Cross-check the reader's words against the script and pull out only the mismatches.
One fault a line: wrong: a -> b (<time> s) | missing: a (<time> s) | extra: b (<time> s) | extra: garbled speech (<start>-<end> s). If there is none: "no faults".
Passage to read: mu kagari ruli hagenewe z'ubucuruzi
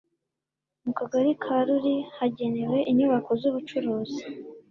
extra: ka (1.4 s)
extra: inyubako (2.9 s)